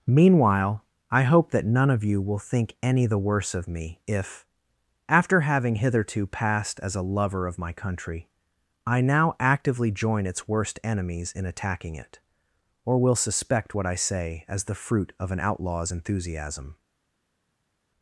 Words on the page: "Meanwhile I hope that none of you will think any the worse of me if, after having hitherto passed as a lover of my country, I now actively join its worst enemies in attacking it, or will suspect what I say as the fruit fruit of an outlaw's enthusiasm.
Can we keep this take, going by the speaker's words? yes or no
no